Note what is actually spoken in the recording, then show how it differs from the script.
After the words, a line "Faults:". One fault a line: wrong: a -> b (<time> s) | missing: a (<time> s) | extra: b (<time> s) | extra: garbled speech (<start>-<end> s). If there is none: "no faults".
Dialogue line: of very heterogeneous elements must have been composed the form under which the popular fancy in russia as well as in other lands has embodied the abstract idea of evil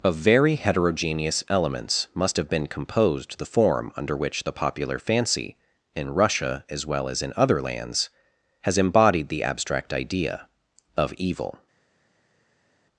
of very heterogeneous elements must have been composed the form under which the popular fancy in russia as well as in other lands has embodied the abstract idea of evil
Faults:
no faults